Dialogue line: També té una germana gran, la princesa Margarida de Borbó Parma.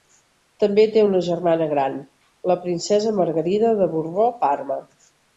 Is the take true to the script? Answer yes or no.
yes